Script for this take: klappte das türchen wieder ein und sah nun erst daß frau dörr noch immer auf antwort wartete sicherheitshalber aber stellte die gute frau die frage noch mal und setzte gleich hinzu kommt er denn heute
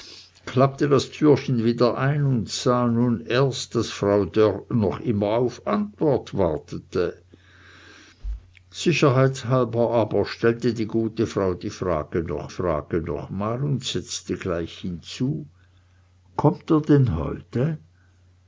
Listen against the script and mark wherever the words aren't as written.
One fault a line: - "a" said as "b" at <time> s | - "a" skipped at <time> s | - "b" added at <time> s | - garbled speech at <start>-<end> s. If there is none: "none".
- "frage noch" added at 12.5 s